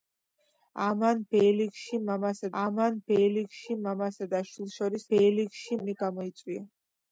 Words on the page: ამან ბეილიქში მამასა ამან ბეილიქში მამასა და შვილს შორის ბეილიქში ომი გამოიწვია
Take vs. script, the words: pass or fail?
pass